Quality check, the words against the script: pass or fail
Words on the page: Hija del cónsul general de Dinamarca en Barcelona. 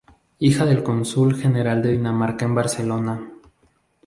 pass